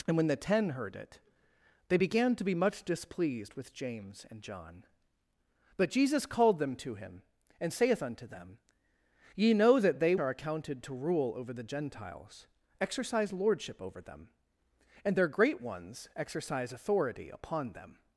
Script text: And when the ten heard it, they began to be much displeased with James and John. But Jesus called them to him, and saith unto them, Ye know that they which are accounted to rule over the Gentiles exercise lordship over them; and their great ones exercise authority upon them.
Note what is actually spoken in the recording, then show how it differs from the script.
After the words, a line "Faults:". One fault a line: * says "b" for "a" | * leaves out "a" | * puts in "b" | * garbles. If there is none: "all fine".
And when the ten heard it, they began to be much displeased with James and John. But Jesus called them to him, and saith unto them, Ye know that they are accounted to rule over the Gentiles exercise lordship over them; and their great ones exercise authority upon them.
Faults:
* leaves out "which"